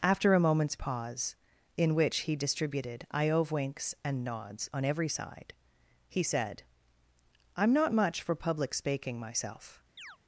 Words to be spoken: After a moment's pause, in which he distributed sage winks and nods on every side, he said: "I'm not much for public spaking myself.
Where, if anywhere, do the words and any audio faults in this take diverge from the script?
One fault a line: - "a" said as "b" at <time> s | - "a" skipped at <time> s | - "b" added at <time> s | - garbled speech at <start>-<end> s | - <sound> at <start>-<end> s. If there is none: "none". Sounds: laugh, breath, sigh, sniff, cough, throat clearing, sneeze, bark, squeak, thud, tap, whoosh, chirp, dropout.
- "sage" said as "iove" at 3.1 s
- chirp at 10.0-10.2 s